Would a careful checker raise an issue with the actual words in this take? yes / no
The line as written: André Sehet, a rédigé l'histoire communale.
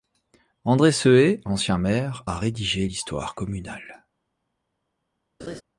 yes